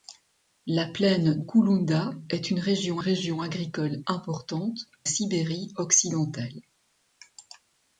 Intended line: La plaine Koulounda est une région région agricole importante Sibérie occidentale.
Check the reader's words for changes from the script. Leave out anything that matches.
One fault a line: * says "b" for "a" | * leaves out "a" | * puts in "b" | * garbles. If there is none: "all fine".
all fine